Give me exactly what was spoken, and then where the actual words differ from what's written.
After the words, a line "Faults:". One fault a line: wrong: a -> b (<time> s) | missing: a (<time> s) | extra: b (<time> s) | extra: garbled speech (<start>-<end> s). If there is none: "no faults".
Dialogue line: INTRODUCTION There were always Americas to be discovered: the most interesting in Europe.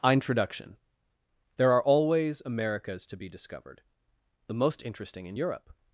INTRODUCTION There are always Americas to be discovered: the most interesting in Europe.
Faults:
wrong: were -> are (1.7 s)